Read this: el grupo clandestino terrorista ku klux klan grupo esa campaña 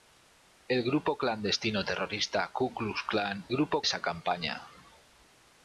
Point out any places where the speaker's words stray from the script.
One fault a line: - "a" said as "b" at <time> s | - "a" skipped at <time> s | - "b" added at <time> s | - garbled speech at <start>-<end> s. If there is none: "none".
none